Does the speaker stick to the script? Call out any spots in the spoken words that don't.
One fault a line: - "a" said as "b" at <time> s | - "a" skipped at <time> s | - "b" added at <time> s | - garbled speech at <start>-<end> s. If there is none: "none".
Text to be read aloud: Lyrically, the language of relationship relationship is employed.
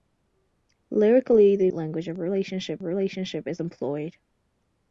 none